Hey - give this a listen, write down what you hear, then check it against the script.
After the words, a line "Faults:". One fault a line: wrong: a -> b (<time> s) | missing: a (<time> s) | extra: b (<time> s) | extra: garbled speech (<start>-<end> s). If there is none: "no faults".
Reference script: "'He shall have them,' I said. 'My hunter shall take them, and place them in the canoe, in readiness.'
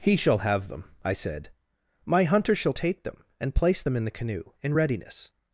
"'He shall have them,' I said. 'My hunter shall take them, and place them in the canoe, in readiness.'
Faults:
no faults